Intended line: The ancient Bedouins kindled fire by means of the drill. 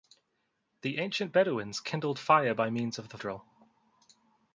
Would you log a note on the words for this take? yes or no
no